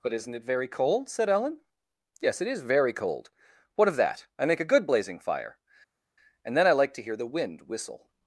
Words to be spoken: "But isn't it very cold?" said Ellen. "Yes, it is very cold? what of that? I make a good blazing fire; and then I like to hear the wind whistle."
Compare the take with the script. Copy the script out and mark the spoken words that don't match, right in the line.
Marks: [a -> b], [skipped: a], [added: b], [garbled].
"But isn't it very cold?" said Ellen. "Yes, it is very cold? what of that? I make a good blazing fire; and then I like to hear the wind whistle."